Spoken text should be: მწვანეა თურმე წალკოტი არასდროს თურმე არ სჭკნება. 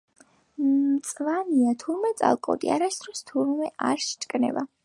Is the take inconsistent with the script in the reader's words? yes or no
no